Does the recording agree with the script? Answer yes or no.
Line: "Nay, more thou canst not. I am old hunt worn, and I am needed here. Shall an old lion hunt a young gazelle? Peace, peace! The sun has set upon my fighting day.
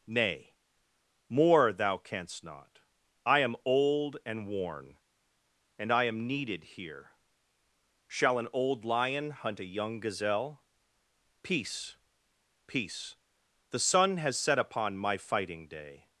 no